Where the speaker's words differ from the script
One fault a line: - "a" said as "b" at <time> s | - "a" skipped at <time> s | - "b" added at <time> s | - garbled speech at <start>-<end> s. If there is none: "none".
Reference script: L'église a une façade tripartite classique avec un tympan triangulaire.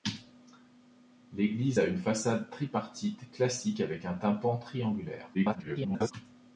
- garbled speech at 5.3-6.1 s